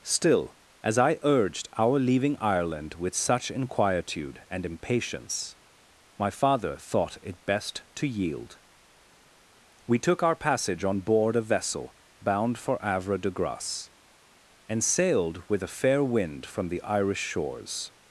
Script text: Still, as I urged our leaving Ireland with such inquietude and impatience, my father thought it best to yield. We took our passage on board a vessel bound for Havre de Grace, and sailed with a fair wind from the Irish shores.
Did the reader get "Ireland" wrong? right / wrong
right